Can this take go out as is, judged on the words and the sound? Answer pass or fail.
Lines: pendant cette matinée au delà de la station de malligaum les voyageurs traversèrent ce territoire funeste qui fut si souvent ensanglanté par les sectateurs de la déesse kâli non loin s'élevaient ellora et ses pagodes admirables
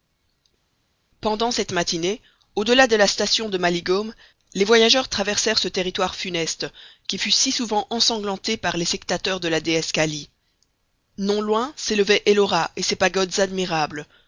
pass